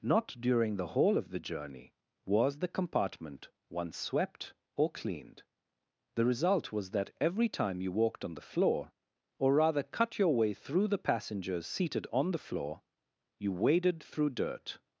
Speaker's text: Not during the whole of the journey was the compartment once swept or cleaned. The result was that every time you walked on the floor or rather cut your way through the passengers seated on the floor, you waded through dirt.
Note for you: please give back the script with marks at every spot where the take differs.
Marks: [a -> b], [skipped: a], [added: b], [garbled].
Not during the whole of the journey was the compartment once swept or cleaned. The result was that every time you walked on the floor or rather cut your way through the passengers seated on the floor, you waded through dirt.